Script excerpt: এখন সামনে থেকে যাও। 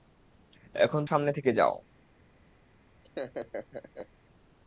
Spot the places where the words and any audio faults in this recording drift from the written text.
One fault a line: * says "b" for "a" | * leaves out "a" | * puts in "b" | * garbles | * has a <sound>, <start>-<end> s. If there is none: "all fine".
* has a laugh, 3.0-4.1 s